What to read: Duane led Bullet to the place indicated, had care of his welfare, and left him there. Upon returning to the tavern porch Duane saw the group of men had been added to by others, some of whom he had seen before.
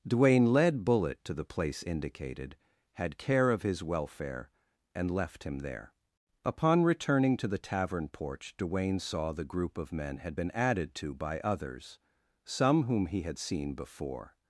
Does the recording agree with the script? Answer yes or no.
no